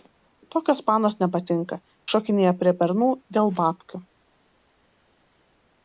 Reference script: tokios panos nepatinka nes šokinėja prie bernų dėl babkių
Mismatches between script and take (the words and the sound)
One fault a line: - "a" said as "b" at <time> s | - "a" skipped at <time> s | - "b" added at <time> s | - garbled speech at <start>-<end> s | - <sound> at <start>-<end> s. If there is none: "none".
- "nes" skipped at 1.8 s